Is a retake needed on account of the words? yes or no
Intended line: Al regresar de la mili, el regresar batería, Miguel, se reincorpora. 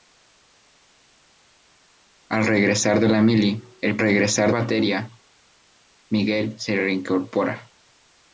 no